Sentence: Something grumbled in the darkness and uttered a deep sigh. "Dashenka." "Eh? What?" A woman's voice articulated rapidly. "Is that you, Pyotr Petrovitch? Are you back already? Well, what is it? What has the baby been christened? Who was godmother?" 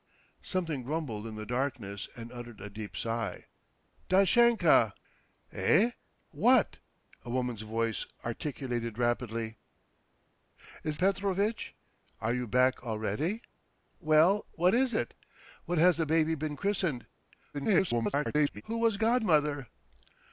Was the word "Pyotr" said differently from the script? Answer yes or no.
yes